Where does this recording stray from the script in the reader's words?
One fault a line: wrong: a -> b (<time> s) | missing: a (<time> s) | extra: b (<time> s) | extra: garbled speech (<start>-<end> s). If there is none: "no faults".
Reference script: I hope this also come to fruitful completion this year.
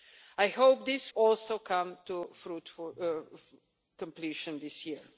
no faults